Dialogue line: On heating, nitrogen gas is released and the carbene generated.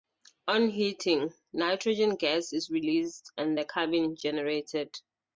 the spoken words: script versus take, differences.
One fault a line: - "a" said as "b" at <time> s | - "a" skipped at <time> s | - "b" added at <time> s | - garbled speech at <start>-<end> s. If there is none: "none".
none